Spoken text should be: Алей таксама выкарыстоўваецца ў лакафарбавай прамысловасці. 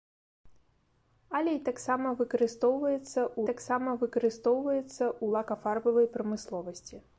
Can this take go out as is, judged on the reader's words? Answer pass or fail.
fail